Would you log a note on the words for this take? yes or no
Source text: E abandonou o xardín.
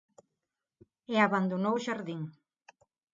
no